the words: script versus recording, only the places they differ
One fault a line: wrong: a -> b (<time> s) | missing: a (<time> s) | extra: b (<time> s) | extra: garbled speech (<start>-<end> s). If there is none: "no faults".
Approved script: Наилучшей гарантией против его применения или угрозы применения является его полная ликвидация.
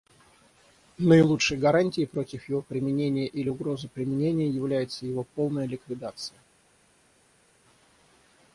no faults